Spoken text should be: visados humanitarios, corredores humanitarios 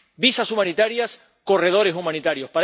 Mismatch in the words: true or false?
false